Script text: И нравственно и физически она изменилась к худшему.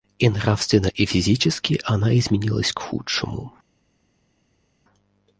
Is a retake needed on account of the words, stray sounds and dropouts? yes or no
no